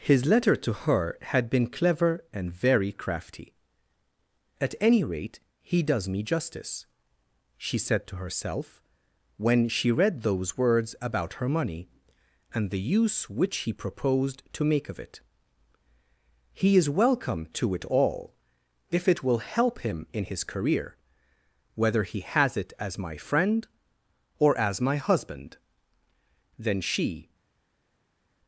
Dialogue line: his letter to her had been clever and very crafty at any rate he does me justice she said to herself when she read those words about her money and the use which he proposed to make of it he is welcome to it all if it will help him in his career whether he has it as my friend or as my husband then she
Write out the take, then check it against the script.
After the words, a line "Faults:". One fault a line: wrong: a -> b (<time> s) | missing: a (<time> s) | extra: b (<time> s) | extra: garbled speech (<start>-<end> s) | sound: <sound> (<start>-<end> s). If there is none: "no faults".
his letter to her had been clever and very crafty at any rate he does me justice she said to herself when she read those words about her money and the use which he proposed to make of it he is welcome to it all if it will help him in his career whether he has it as my friend or as my husband then she
Faults:
no faults